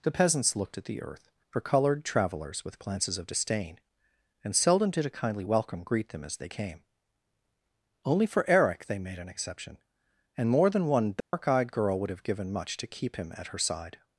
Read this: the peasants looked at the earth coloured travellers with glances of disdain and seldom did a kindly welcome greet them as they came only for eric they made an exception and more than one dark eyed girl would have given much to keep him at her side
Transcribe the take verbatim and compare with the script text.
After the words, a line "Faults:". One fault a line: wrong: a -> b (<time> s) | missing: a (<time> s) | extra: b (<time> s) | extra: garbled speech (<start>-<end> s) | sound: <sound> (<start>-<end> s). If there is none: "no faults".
the peasants looked at the earth for colored travelers with glances of disdain and seldom did a kindly welcome greet them as they came only for eric they made an exception and more than one dark eyed girl would have given much to keep him at her side
Faults:
wrong: coloured travellers -> for colored travelers (1.5 s)
sound: dropout (11.2-11.3 s)